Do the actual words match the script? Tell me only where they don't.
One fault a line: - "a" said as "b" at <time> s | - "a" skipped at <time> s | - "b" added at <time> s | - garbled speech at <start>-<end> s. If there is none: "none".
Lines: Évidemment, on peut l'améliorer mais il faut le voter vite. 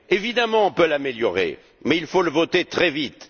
- "très" added at 2.6 s